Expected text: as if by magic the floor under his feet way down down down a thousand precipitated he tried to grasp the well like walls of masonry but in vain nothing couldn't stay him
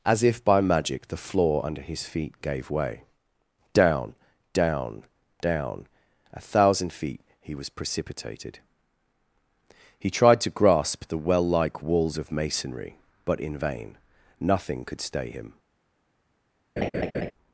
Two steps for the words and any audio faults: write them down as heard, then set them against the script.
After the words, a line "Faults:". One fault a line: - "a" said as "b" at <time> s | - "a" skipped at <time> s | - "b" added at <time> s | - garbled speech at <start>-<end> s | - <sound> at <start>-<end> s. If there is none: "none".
as if by magic the floor under his feet gave way down down down a thousand feet he was precipitated he tried to grasp the well like walls of masonry but in vain nothing could stay him
Faults:
- "gave" added at 2.4 s
- "feet he was" added at 6.9 s
- "couldn't" said as "could" at 14.8 s
- laugh at 16.8-17.3 s